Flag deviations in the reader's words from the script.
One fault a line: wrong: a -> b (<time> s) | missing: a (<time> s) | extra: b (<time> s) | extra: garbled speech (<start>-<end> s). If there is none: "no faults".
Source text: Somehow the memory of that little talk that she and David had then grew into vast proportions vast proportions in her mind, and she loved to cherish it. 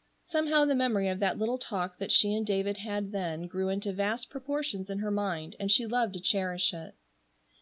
missing: vast proportions (4.9 s)